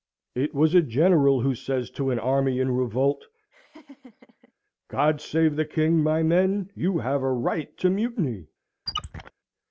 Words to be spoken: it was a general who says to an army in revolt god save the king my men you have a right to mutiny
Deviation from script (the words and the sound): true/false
true